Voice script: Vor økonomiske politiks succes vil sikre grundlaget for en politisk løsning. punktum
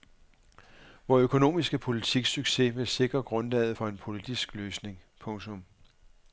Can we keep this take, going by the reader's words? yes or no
yes